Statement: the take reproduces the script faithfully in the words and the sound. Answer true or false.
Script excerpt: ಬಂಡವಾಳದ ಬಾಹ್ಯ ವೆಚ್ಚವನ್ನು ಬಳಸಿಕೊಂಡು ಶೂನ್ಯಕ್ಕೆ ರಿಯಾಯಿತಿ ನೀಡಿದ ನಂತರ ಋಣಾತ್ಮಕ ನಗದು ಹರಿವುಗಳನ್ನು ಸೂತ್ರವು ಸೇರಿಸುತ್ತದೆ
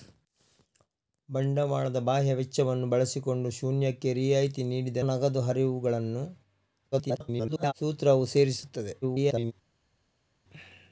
false